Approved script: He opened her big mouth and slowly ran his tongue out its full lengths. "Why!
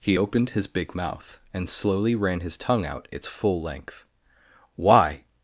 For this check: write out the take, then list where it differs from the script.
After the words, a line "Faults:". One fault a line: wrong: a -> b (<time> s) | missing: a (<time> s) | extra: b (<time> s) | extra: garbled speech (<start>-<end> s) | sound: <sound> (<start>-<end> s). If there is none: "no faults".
He opened his big mouth and slowly ran his tongue out its full length. "Why!
Faults:
wrong: her -> his (0.5 s)
wrong: lengths -> length (3.6 s)